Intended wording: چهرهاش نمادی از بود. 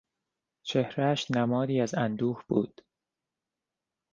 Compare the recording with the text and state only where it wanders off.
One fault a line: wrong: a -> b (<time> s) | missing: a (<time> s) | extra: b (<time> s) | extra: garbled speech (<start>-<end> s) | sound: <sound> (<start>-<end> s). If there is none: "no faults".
extra: اندوه (1.9 s)